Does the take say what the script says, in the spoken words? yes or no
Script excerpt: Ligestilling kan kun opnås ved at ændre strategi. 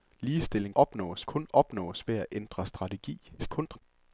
no